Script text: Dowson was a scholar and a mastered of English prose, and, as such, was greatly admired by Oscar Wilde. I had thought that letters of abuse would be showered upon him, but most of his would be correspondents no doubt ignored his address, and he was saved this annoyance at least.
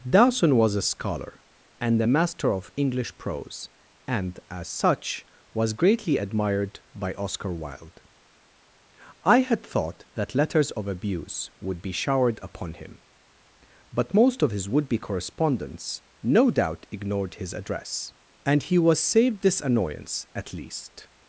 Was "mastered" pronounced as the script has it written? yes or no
no